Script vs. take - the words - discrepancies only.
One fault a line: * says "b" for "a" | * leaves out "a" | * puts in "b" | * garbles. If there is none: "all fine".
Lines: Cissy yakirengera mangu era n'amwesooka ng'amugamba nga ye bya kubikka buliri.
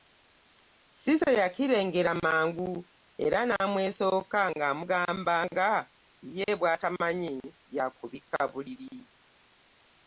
* puts in "bw'atamanyi"